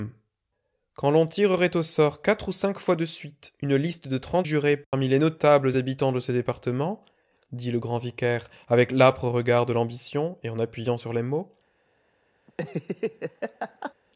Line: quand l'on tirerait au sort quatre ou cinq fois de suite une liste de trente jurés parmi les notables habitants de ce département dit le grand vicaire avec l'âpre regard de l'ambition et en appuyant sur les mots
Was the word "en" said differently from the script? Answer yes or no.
no